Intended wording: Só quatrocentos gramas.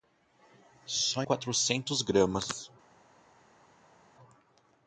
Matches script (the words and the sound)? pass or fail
pass